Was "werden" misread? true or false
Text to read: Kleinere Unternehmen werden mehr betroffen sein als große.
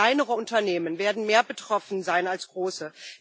false